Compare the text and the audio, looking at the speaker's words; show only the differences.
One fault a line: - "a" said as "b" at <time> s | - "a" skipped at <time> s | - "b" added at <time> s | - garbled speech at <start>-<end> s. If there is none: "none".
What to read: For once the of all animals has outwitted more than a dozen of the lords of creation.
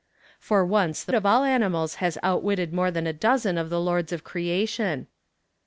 none